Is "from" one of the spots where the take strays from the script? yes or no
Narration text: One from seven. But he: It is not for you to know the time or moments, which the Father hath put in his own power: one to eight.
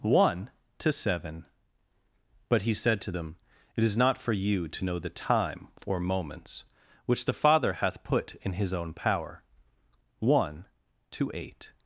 yes